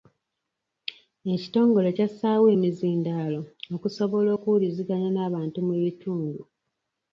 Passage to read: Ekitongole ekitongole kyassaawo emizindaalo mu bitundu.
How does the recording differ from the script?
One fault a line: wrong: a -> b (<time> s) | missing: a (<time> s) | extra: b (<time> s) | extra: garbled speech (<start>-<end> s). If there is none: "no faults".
missing: ekitongole (1.9 s)
extra: okusobola okuwuliziganya n'abantu (3.7 s)